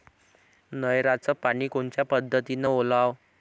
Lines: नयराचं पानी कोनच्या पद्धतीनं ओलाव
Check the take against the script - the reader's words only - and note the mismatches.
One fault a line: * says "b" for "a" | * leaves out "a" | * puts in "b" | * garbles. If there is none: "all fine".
all fine